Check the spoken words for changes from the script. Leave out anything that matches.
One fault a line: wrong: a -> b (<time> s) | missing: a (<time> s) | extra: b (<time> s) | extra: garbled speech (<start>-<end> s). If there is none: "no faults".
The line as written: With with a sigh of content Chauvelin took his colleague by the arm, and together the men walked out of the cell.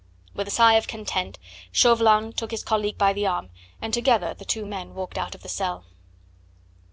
missing: with (0.5 s)
extra: two (4.4 s)